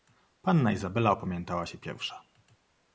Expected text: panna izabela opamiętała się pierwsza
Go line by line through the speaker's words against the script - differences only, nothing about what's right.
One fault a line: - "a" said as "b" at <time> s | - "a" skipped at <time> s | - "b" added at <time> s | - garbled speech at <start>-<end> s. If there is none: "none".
none